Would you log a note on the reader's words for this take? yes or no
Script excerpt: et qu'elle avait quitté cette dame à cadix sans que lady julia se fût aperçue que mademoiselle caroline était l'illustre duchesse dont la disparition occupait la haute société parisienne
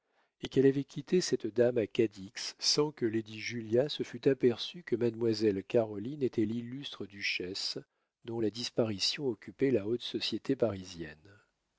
no